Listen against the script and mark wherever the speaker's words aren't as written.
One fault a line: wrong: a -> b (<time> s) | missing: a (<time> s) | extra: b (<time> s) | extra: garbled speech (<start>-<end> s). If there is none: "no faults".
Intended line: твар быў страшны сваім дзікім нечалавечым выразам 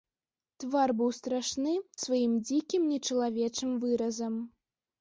no faults